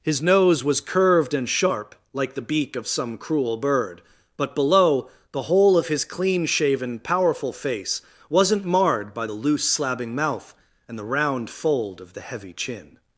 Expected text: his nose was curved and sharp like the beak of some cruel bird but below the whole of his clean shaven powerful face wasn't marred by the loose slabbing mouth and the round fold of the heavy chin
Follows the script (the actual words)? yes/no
yes